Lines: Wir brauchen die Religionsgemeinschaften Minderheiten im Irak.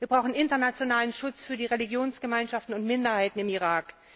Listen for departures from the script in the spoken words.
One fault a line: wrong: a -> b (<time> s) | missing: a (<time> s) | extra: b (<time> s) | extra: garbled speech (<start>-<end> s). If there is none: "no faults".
extra: internationalen Schutz für (0.3 s)
extra: und (2.7 s)